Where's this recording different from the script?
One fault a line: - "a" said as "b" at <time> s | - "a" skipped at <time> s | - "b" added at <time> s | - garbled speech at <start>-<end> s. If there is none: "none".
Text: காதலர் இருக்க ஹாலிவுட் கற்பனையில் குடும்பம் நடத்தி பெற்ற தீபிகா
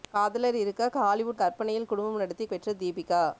none